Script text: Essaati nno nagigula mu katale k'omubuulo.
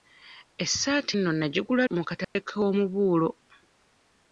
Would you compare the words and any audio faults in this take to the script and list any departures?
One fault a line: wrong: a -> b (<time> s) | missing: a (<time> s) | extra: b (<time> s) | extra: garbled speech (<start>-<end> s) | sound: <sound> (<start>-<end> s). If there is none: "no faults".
sound: dropout (2.2-2.4 s)